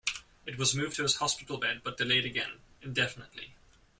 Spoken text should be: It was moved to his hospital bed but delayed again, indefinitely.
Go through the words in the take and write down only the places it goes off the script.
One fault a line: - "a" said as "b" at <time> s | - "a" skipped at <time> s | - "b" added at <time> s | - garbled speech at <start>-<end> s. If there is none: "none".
none